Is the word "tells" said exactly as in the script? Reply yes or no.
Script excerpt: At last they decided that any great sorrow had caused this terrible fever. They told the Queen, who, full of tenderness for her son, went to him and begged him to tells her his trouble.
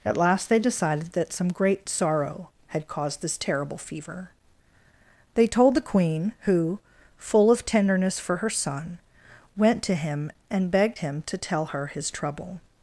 no